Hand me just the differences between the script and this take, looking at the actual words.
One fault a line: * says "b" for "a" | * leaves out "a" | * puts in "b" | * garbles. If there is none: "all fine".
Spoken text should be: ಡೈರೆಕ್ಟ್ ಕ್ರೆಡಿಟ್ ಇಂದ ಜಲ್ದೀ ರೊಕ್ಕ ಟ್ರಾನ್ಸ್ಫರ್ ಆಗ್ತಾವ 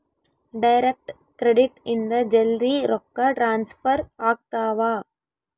all fine